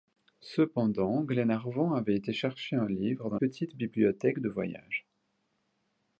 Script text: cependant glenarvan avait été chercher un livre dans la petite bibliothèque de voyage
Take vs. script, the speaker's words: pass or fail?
fail